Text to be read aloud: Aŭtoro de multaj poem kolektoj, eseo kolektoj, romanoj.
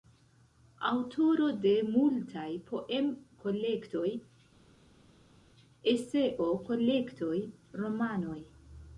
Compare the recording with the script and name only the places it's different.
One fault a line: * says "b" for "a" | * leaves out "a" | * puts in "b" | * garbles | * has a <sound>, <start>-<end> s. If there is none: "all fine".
all fine